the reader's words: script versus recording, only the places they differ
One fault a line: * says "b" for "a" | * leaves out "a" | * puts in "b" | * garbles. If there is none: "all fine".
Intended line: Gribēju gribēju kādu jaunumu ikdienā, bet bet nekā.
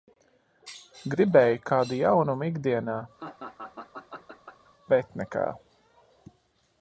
* leaves out "gribēju"
* leaves out "bet"